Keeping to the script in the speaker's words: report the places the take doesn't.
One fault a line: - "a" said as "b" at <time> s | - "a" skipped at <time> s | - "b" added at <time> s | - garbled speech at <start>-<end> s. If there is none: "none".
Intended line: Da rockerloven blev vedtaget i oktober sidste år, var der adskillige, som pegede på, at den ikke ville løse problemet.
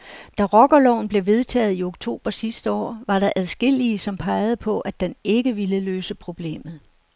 none